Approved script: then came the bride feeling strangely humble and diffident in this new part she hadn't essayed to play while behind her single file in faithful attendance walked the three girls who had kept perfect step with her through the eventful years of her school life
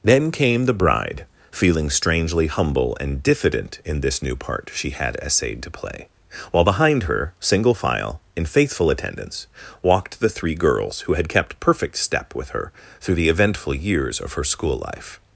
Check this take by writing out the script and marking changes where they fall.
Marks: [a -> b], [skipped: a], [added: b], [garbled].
then came the bride feeling strangely humble and diffident in this new part she [hadn't -> had] essayed to play while behind her single file in faithful attendance walked the three girls who had kept perfect step with her through the eventful years of her school life